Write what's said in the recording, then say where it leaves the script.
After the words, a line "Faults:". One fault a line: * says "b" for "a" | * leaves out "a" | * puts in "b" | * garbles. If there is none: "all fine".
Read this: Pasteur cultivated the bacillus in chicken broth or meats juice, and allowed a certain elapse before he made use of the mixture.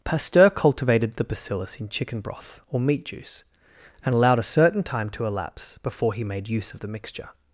Pasteur cultivated the bacillus in chicken broth or meat juice, and allowed a certain time to elapse before he made use of the mixture.
Faults:
* says "meat" for "meats"
* puts in "time to"